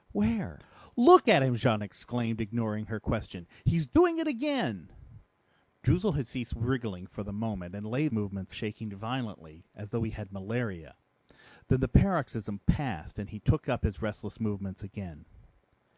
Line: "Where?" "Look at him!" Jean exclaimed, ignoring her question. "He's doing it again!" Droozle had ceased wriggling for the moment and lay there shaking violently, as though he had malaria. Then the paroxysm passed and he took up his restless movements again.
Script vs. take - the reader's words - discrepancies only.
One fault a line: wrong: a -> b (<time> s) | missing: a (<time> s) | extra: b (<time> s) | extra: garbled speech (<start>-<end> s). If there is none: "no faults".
wrong: there -> movements (8.1 s)